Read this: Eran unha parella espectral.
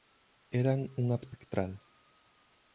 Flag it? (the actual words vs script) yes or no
yes